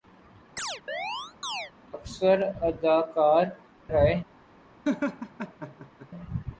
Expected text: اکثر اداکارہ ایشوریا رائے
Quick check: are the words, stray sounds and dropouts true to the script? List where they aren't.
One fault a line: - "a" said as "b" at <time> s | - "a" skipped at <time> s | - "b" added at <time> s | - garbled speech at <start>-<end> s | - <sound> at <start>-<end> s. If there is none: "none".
- chirp at 0.6-1.7 s
- "ایشوریا" skipped at 3.5 s
- laugh at 4.8-6.1 s